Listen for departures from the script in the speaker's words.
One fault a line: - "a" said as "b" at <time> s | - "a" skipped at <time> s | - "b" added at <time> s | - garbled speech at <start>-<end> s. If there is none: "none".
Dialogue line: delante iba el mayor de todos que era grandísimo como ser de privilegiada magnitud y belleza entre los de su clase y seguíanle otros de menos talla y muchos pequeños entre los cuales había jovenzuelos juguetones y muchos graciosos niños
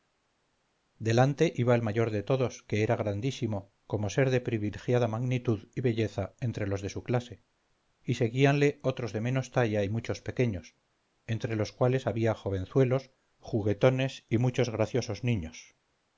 none